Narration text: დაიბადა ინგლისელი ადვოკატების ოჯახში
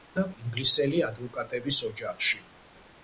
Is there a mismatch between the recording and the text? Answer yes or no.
no